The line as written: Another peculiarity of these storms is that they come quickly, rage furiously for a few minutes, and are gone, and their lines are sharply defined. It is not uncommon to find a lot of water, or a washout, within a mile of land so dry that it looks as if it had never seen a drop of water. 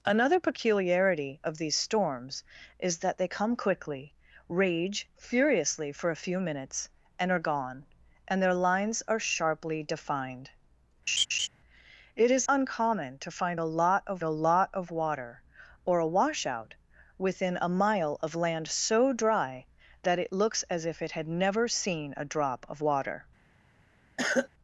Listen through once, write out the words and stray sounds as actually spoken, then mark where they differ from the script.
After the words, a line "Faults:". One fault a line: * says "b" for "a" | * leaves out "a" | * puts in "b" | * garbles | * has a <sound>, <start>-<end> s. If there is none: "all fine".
Another peculiarity of these storms is that they come quickly, rage furiously for a few minutes, and are gone, and their lines are sharply defined. It is uncommon to find a lot of a lot of water, or a washout, within a mile of land so dry that it looks as if it had never seen a drop of water.
Faults:
* has a laugh, 11.1-11.5 s
* leaves out "not"
* puts in "a lot of"
* has a cough, 24.2-24.5 s